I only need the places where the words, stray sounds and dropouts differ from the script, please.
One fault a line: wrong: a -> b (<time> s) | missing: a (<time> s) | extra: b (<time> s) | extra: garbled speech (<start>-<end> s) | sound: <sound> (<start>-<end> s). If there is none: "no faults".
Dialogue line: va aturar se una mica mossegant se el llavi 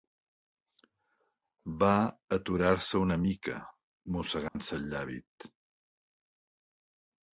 sound: dropout (4.5-4.6 s)